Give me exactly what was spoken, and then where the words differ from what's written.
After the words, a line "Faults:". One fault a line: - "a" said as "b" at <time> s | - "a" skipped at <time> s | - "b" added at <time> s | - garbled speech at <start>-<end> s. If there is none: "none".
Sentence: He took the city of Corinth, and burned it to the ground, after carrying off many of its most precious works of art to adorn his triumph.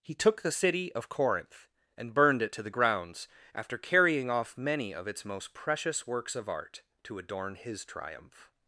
He took the city of Corinth, and burned it to the grounds, after carrying off many of its most precious works of art to adorn his triumph.
Faults:
- "ground" said as "grounds" at 2.7 s